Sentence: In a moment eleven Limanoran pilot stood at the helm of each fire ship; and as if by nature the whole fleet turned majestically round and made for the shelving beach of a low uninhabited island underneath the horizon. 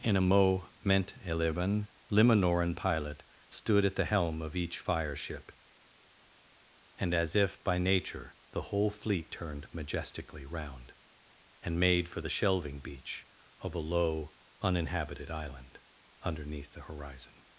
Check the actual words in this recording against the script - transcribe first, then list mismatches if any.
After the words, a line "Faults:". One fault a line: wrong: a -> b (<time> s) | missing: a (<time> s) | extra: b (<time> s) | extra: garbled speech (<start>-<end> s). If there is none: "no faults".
In a moment eleven Limanoran pilot stood at the helm of each fire ship; and as if by nature the whole fleet turned majestically round and made for the shelving beach of a low uninhabited island underneath the horizon.
Faults:
no faults